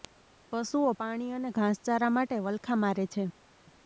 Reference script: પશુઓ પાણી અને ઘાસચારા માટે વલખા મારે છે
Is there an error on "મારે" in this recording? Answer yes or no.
no